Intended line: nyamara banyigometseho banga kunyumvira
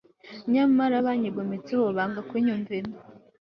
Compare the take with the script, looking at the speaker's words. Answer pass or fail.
pass